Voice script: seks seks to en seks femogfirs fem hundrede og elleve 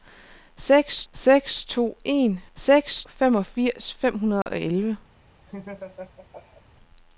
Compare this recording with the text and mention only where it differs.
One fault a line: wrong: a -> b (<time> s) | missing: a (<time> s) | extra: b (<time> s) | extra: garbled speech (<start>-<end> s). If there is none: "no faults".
no faults